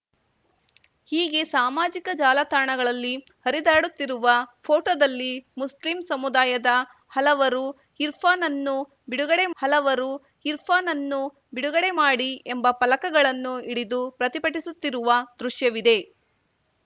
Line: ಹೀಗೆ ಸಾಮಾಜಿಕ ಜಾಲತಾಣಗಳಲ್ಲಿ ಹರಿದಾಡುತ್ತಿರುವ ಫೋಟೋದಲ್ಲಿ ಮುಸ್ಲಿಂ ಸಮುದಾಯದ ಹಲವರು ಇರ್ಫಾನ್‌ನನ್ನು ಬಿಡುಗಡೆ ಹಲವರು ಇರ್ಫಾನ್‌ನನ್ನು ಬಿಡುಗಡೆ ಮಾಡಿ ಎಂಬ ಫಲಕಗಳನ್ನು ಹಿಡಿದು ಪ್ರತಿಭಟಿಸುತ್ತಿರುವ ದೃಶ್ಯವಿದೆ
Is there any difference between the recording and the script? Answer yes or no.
no